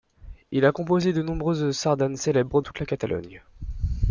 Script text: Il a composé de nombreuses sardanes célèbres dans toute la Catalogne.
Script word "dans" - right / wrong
wrong